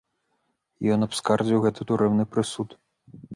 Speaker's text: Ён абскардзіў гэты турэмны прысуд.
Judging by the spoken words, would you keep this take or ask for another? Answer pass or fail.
pass